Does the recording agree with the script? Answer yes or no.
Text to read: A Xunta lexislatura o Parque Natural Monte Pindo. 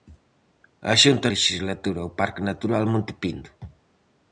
yes